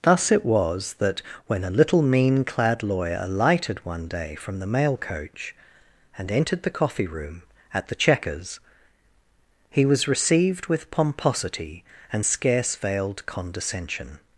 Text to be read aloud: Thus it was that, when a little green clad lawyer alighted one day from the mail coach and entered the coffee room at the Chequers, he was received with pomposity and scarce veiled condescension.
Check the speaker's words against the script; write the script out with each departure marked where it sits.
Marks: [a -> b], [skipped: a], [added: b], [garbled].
Thus it was that, when a little [green -> mean] clad lawyer alighted one day from the mail coach and entered the coffee room at the Chequers, he was received with pomposity and scarce veiled condescension.